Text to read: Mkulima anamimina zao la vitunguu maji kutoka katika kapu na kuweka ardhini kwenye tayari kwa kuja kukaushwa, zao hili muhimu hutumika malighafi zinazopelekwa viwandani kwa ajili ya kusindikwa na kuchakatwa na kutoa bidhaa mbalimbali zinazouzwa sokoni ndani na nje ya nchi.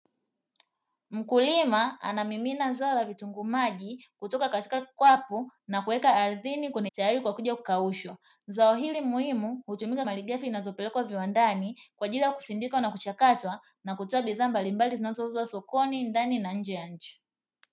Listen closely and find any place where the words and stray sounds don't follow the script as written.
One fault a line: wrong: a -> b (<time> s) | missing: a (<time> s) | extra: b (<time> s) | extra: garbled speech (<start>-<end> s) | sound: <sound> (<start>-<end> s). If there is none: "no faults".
no faults